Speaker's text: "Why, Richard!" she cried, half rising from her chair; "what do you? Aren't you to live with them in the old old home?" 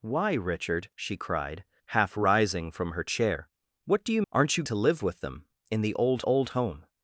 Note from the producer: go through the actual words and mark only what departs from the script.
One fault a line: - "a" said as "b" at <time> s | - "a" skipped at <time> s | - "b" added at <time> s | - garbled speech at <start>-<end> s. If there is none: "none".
none